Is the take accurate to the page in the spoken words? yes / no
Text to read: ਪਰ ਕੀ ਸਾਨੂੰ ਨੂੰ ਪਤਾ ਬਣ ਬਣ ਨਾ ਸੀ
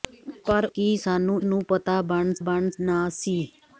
yes